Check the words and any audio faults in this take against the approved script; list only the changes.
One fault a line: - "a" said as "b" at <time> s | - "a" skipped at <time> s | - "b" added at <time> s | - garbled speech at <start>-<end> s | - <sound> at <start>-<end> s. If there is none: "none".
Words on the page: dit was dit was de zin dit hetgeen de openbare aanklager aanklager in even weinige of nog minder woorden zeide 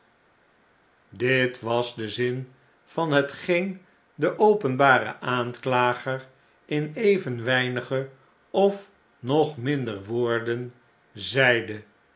- "dit was" skipped at 1.9 s
- "dit" said as "van" at 2.8 s
- "aanklager" skipped at 6.3 s